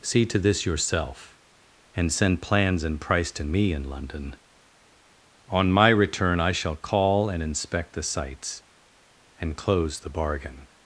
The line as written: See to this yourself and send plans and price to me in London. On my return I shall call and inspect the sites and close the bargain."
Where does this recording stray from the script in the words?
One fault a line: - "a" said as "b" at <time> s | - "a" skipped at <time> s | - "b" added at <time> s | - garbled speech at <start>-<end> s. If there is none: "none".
none